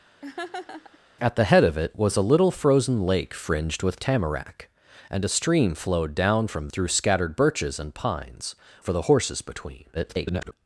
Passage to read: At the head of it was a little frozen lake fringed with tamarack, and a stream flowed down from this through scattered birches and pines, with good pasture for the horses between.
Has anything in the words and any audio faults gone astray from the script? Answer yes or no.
yes